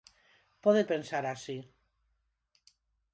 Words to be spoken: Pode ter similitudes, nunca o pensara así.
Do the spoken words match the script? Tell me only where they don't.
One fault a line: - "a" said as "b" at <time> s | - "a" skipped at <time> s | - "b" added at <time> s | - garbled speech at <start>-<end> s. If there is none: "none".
- "ter similitudes nunca" skipped at 0.8 s